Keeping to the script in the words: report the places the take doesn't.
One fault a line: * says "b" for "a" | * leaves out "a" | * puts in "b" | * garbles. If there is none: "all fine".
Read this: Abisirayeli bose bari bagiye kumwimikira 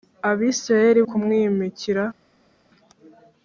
* leaves out "bose bari bagiye"